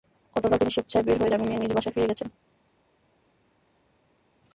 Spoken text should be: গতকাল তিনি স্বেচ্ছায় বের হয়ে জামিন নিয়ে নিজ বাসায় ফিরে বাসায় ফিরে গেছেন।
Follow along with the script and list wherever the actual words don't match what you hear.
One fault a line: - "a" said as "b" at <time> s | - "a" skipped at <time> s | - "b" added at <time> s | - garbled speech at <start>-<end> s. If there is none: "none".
- "বাসায় ফিরে" skipped at 2.1 s